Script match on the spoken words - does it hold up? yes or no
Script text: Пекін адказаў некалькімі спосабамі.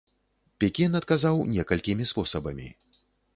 yes